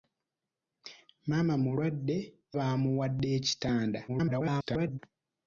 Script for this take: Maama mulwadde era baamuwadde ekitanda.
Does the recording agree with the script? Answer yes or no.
no